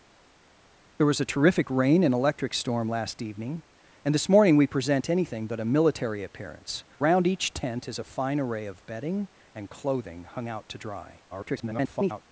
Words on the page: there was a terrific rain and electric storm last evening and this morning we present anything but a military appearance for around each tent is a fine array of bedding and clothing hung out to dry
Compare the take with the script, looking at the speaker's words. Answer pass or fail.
fail